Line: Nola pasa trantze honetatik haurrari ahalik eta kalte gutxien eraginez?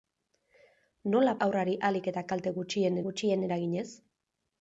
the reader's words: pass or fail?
fail